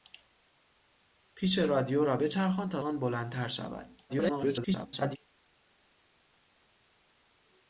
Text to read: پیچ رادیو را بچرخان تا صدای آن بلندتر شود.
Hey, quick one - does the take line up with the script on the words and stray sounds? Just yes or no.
no